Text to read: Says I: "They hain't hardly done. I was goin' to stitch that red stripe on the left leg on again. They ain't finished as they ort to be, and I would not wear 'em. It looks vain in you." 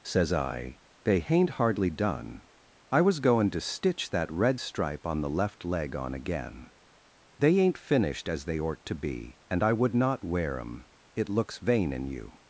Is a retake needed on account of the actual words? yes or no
no